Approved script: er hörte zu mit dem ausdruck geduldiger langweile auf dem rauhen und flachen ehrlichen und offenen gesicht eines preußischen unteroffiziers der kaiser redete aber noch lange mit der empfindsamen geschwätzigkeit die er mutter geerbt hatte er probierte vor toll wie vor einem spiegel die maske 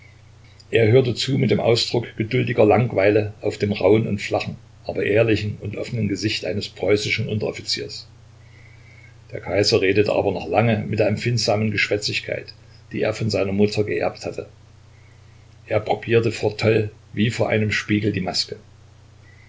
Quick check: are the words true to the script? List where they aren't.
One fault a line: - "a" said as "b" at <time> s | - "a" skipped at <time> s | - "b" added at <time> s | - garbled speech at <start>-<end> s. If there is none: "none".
- "aber" added at 4.8 s
- "von seiner" added at 13.1 s